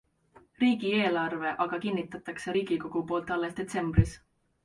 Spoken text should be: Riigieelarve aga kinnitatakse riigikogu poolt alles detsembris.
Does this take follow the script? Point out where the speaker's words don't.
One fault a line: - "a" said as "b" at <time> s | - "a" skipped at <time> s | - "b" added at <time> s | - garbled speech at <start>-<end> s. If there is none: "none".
none